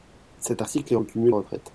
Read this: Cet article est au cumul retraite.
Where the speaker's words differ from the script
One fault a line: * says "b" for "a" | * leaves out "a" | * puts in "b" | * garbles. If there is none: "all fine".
all fine